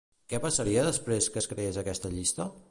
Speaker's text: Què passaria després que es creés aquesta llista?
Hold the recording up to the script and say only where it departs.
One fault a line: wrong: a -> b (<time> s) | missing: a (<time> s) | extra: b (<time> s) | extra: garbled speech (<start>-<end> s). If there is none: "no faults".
no faults